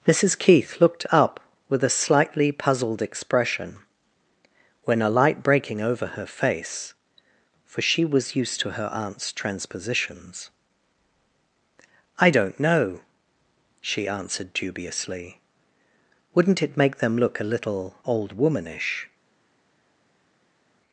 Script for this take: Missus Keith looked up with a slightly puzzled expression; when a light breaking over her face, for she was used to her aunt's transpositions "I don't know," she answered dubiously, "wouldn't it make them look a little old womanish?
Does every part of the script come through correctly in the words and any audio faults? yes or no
yes